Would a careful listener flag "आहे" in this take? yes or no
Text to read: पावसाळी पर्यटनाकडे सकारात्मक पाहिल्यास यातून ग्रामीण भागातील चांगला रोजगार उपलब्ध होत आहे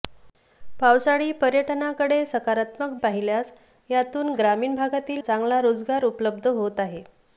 no